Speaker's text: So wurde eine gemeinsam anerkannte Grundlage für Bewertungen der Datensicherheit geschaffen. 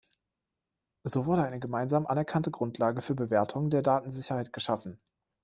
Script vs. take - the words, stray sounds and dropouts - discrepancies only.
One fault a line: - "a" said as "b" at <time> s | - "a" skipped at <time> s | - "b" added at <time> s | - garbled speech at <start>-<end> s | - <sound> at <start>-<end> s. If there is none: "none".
none